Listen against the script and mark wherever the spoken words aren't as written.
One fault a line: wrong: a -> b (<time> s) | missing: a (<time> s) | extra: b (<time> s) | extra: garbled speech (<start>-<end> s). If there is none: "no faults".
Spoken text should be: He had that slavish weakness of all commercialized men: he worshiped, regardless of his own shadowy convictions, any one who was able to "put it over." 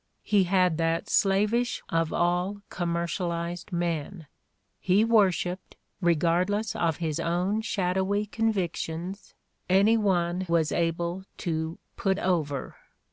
missing: weakness (1.8 s)
missing: who (10.4 s)
missing: it (12.2 s)